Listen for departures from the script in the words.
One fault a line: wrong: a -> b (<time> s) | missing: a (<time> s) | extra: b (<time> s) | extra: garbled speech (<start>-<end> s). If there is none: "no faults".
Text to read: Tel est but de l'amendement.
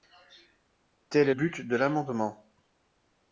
no faults